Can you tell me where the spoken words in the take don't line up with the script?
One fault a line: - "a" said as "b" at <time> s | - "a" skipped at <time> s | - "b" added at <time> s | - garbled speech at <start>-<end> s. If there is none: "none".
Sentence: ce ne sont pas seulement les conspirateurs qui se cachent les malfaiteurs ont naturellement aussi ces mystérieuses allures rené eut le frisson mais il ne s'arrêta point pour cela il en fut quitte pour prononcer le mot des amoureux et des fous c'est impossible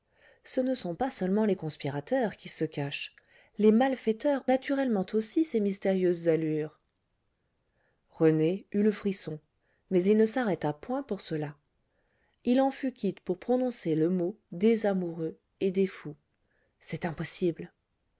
- "ont" skipped at 4.4 s